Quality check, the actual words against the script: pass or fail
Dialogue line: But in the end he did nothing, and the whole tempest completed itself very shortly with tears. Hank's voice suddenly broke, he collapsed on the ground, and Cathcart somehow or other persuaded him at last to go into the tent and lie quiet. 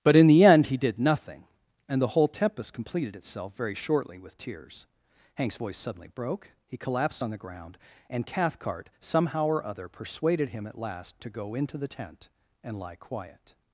pass